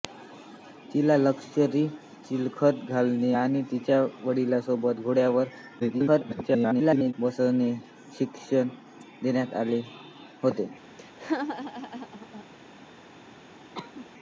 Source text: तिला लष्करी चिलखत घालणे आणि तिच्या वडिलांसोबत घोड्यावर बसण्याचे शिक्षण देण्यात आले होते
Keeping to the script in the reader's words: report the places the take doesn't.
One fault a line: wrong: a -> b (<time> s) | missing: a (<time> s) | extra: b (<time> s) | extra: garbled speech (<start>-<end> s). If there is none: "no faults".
extra: garbled speech (5.8-7.1 s)